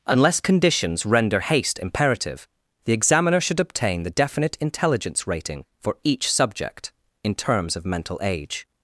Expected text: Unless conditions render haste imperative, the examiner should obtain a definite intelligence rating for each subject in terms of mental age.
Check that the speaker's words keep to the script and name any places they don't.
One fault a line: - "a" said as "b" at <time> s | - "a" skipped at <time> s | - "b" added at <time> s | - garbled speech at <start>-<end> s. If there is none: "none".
- "a" said as "the" at 4.0 s